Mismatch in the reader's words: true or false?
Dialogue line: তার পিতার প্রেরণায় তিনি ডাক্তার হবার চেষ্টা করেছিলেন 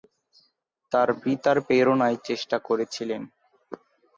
true